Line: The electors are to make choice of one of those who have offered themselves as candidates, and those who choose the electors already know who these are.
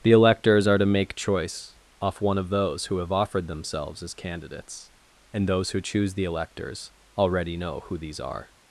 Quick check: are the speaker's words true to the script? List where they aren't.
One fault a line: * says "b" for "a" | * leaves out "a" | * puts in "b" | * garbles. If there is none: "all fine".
* says "off" for "of"